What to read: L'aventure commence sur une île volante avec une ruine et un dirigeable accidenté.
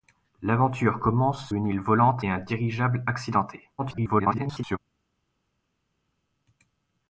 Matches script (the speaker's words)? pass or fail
fail